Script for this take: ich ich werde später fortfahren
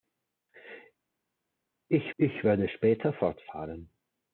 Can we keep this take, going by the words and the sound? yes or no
yes